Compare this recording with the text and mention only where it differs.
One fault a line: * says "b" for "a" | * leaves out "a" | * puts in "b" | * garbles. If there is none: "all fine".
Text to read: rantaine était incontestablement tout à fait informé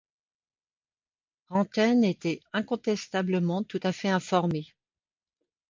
all fine